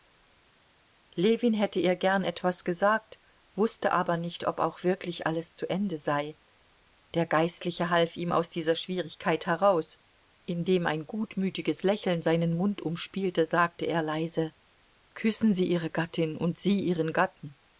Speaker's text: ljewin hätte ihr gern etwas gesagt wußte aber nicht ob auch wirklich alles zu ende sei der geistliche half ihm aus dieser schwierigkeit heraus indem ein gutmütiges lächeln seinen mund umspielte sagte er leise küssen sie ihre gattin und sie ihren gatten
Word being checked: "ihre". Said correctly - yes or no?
yes